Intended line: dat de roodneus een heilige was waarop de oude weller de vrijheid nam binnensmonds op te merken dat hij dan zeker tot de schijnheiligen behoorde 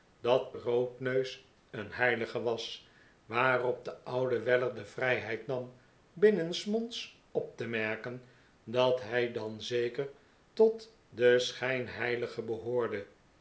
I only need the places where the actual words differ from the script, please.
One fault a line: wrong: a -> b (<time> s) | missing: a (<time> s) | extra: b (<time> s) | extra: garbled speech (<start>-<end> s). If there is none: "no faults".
missing: de (0.6 s)